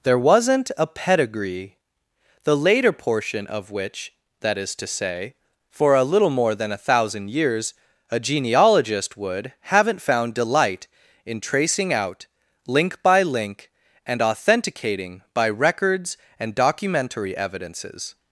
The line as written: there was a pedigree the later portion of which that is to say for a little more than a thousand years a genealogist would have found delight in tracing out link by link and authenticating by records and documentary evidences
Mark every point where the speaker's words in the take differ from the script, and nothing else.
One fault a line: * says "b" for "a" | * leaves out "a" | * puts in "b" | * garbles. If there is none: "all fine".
* says "wasn't" for "was"
* says "haven't" for "have"